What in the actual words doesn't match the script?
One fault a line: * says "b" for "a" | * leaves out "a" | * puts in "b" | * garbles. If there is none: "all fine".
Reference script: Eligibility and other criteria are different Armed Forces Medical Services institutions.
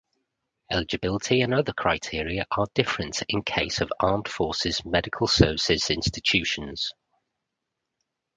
* puts in "in case of"